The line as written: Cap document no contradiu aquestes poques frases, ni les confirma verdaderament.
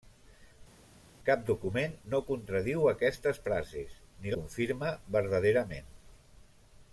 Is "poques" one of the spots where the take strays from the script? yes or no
yes